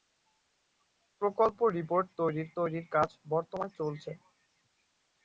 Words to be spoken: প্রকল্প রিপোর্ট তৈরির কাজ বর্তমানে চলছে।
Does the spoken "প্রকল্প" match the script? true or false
true